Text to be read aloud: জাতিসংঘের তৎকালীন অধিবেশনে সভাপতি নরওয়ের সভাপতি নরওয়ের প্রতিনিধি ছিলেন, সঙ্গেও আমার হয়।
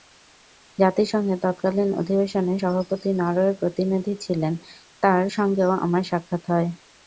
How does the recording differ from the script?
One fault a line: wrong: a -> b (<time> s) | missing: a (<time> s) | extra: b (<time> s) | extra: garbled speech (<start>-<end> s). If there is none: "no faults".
missing: সভাপতি নরওয়ের (3.6 s)
extra: তাঁর (5.0 s)
extra: সাক্ষাৎ (6.0 s)